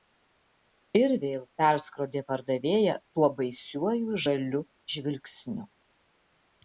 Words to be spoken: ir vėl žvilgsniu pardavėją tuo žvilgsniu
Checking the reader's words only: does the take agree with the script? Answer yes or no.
no